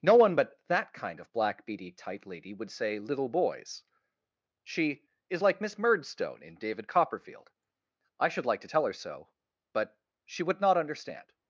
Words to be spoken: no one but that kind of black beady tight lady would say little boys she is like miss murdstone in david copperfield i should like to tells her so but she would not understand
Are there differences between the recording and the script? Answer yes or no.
yes